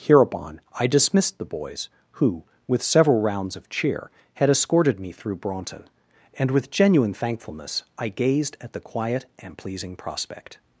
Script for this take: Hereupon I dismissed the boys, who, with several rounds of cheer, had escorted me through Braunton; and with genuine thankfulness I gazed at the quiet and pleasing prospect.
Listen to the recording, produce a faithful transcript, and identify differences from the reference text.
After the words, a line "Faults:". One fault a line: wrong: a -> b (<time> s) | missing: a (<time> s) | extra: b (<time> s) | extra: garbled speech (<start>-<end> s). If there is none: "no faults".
Hereupon I dismissed the boys, who, with several rounds of cheer, had escorted me through Braunton; and with genuine thankfulness I gazed at the quiet and pleasing prospect.
Faults:
no faults